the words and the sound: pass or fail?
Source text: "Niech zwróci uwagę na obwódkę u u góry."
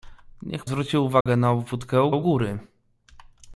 fail